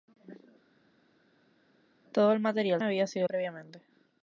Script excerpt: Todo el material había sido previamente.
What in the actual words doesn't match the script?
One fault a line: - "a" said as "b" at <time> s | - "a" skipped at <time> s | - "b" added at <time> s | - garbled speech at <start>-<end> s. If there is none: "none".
none